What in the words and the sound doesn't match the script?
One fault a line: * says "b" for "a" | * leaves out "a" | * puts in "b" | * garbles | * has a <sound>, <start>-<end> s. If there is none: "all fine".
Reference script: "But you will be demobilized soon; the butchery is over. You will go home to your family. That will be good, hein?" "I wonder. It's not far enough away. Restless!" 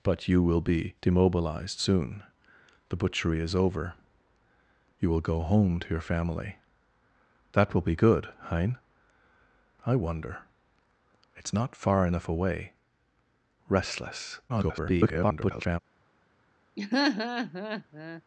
* garbles
* has a laugh, 16.8-18.2 s